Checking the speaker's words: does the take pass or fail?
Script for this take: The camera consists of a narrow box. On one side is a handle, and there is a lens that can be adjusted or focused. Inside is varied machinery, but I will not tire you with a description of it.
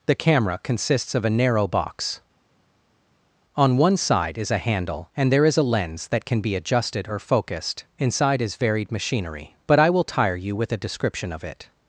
fail